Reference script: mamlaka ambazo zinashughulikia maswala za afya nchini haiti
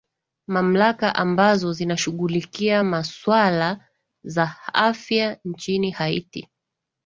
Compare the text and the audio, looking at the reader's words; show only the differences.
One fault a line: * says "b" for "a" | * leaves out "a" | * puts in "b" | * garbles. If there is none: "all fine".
all fine